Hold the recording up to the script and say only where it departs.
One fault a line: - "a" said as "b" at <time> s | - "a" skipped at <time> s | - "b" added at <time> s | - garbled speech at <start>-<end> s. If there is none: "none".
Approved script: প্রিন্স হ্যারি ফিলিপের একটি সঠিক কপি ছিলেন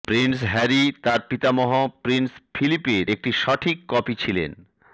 - "তার পিতামহ প্রিন্স" added at 1.0 s